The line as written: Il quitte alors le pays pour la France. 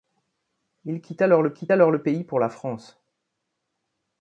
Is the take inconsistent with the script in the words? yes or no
yes